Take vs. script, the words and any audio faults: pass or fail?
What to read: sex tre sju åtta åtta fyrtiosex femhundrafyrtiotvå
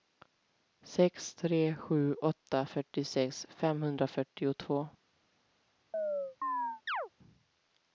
fail